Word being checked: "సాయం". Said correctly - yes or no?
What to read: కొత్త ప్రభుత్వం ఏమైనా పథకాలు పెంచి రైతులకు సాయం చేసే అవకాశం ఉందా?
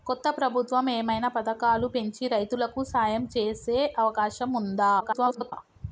yes